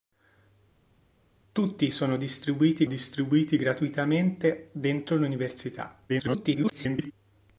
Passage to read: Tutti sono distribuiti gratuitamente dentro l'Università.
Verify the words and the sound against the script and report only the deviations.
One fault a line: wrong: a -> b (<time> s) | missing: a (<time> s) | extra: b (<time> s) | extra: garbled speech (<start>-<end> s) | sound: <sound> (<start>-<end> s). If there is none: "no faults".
extra: distribuiti (2.9 s)
extra: garbled speech (6.1-7.1 s)